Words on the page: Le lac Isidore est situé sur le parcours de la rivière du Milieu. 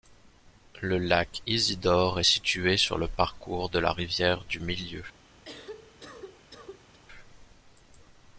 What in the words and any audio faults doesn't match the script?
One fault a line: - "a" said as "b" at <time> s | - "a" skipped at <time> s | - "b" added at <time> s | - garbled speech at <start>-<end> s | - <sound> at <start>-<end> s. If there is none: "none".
- cough at 5.4-7.0 s